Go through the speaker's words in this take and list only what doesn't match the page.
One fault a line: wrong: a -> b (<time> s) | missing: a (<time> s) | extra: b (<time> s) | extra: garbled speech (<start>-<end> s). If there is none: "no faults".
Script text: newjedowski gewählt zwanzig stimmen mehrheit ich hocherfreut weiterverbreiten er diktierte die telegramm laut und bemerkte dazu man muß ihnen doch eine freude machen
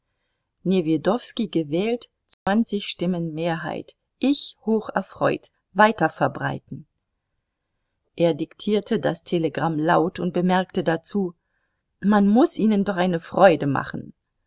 wrong: die -> das (9.0 s)